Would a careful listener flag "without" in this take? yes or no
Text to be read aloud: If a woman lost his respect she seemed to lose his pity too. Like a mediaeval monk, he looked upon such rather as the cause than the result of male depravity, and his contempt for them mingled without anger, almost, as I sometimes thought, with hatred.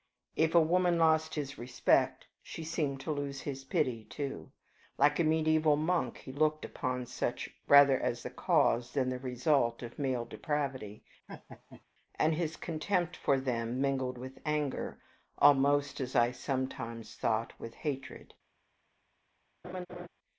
yes